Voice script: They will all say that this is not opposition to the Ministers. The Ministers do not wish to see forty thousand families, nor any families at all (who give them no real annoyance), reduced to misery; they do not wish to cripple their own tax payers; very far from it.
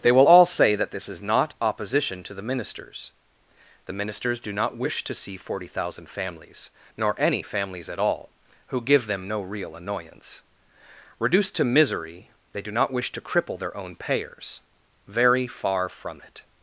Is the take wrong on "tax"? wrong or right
wrong